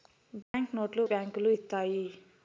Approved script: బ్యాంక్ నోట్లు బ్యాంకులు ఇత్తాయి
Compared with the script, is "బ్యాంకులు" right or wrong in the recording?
right